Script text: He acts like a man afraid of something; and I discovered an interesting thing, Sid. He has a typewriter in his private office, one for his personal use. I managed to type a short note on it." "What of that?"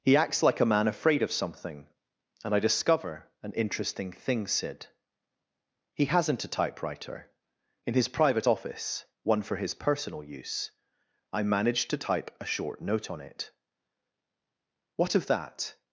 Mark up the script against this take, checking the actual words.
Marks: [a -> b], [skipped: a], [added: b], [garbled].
He acts like a man afraid of something; and I [discovered -> discover] an interesting thing, Sid. He [has -> hasn't] a typewriter in his private office, one for his personal use. I managed to type a short note on it." "What of that?"